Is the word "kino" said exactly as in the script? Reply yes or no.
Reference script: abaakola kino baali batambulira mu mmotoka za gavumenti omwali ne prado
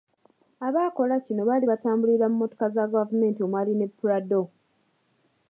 yes